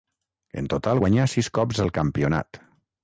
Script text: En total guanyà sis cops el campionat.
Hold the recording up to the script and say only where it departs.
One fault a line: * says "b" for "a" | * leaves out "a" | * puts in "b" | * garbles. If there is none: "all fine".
all fine